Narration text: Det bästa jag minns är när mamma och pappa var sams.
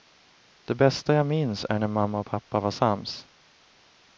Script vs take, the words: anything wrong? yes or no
no